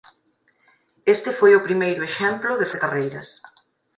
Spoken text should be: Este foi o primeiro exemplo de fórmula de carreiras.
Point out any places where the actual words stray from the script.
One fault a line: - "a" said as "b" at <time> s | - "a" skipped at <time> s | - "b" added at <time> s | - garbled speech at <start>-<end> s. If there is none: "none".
- "fórmula" skipped at 2.7 s